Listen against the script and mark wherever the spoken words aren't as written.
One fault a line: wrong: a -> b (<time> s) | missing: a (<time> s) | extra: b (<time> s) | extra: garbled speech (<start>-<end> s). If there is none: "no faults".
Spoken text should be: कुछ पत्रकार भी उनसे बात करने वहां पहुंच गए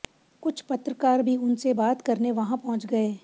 no faults